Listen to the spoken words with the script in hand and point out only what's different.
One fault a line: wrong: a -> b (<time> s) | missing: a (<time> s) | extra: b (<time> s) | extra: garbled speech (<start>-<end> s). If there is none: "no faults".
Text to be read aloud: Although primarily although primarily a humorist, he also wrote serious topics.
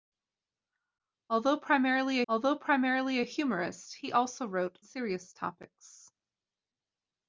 no faults